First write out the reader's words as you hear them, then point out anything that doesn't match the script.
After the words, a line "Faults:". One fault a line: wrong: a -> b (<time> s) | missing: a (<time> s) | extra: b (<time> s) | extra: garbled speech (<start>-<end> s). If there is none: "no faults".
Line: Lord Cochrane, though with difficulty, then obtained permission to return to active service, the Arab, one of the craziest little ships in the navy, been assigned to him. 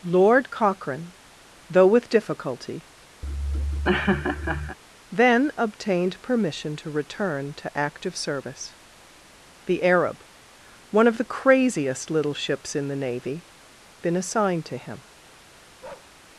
Lord Cochrane, though with difficulty, then obtained permission to return to active service, the Arab, one of the craziest little ships in the navy, been assigned to him.
Faults:
no faults